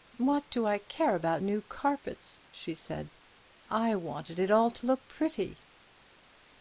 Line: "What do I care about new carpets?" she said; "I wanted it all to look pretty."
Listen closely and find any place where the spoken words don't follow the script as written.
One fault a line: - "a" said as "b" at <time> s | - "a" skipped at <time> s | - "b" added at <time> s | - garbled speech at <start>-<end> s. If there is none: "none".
none